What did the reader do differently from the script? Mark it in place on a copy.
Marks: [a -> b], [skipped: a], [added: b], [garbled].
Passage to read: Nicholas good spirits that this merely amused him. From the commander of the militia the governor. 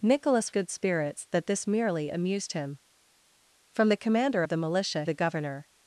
Nicholas good spirits that this merely amused him. From the commander of the militia the governor.